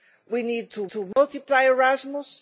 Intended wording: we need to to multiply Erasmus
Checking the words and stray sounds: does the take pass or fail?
fail